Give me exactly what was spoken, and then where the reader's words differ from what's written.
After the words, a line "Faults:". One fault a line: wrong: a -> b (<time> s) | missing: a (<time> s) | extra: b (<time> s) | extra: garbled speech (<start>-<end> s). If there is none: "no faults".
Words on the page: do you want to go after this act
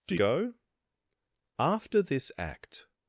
do go after this act
Faults:
missing: you want to (0.1 s)